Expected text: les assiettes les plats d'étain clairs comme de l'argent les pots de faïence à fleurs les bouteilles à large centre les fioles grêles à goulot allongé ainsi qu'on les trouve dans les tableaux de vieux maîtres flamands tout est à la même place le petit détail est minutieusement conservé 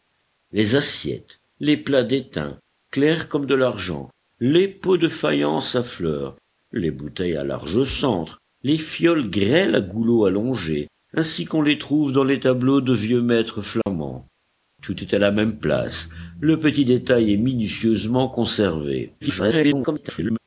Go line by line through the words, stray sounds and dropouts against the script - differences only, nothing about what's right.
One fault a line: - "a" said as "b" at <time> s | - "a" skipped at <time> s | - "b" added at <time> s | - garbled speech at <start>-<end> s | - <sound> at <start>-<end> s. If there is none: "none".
- dropout at 13.8-13.9 s
- garbled speech at 19.2-20.4 s